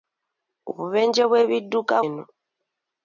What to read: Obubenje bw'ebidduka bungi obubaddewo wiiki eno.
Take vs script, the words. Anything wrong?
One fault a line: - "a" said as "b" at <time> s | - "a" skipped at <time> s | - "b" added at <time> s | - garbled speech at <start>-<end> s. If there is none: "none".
- "bungi obubaddewo wiiki" skipped at 1.9 s